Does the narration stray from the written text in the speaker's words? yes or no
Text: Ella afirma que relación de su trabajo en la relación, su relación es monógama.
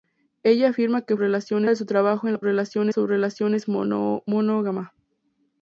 no